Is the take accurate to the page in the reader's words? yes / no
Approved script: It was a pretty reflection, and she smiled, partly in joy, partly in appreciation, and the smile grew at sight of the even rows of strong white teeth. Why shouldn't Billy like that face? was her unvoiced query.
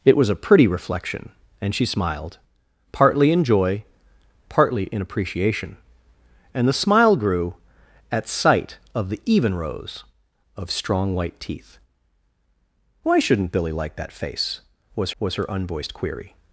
no